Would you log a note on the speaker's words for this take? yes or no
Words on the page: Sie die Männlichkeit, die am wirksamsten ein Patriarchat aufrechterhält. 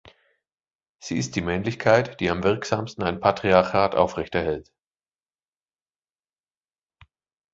yes